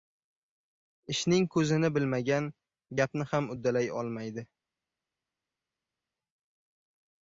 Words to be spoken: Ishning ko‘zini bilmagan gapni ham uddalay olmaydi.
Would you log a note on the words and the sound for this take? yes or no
no